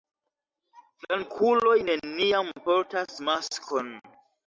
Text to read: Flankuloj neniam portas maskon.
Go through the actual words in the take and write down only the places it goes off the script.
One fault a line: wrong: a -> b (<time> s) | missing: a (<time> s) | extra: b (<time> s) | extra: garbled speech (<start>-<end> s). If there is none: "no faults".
no faults